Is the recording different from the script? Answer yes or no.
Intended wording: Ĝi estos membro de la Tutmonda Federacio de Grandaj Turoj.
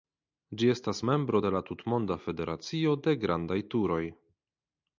yes